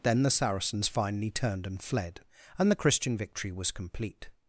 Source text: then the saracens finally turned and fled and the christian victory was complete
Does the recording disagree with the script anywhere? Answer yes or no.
no